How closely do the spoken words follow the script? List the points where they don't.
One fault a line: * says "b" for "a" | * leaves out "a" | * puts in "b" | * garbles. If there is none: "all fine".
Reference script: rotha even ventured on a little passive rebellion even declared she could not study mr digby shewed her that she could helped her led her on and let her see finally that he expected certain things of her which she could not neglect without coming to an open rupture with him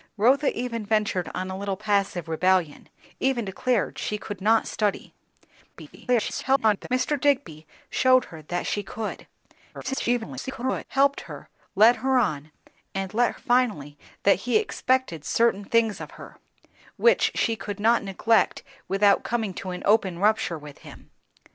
* garbles
* garbles
* leaves out "her see"